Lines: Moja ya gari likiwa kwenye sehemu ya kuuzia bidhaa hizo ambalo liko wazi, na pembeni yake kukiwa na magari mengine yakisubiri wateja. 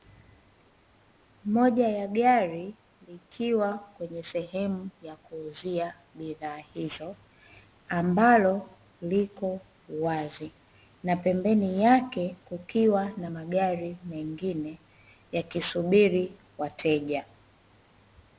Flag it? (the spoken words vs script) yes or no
no